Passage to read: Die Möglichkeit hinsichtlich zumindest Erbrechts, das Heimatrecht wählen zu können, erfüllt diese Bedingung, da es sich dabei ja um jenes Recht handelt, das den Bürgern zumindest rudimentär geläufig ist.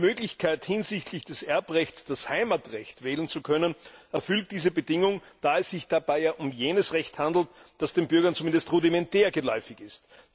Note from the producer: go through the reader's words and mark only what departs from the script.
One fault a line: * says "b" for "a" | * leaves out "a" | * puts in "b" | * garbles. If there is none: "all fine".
* says "des" for "zumindest"